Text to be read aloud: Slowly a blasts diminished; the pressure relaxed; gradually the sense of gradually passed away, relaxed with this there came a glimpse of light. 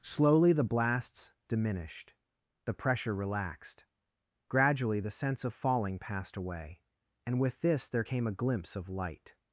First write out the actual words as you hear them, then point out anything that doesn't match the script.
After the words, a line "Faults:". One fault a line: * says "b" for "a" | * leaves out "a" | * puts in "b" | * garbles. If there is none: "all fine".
Slowly the blasts diminished; the pressure relaxed; gradually the sense of falling passed away, and with this there came a glimpse of light.
Faults:
* says "the" for "a"
* says "falling" for "gradually"
* says "and" for "relaxed"